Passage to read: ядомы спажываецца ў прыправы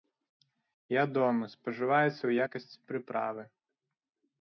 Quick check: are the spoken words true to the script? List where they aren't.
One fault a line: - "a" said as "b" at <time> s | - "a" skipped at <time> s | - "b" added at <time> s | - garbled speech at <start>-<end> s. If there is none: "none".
- "якасці" added at 2.5 s